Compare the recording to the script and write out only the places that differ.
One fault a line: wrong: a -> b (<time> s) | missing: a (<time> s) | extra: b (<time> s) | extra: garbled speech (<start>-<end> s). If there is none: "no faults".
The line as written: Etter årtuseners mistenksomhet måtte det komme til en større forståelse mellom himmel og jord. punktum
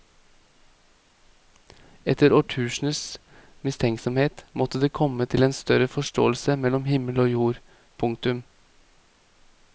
no faults